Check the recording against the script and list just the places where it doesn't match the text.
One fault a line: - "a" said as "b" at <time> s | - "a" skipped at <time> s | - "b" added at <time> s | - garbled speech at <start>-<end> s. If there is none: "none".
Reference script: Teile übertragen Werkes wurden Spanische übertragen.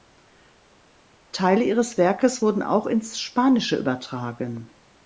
- "übertragen" said as "ihres" at 1.6 s
- "auch ins" added at 2.6 s